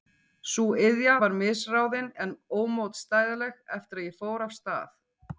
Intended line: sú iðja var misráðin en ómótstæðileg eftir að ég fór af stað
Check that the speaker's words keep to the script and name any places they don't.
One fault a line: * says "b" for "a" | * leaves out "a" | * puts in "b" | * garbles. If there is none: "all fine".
all fine